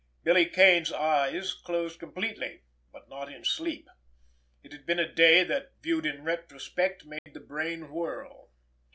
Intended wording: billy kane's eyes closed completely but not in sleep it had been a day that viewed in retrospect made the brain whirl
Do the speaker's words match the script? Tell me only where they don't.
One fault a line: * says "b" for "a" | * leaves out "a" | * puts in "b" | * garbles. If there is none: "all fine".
all fine